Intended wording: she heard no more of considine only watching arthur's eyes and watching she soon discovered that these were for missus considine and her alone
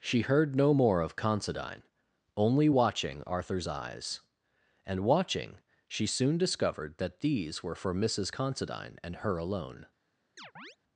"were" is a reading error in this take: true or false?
false